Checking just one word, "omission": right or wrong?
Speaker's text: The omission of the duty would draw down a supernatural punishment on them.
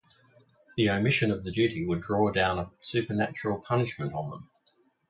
right